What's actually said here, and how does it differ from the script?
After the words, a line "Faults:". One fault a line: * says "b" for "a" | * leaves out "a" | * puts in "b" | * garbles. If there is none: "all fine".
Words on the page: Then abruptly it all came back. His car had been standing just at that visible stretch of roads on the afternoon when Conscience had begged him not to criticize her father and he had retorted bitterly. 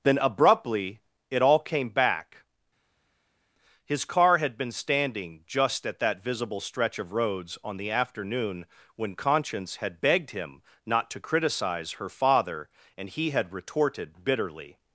Then abruptly it all came back. His car had been standing just at that visible stretch of roads on the afternoon when Conscience had begged him not to criticize her father and he had retorted bitterly.
Faults:
all fine